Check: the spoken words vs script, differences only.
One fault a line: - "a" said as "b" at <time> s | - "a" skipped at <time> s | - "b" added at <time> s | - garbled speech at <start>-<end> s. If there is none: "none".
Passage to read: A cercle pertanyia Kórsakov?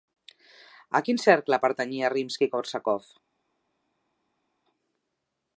- "quin" added at 1.1 s
- "Rimski" added at 2.2 s